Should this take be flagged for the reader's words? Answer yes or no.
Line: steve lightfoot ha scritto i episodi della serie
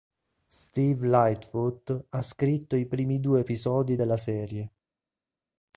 yes